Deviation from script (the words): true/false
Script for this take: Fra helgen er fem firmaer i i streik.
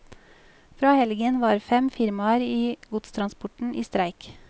true